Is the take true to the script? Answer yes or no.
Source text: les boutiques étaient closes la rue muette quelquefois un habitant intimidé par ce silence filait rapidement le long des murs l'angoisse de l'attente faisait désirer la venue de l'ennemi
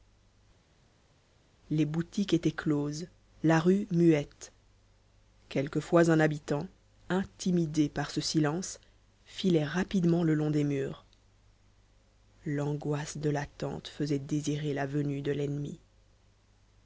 yes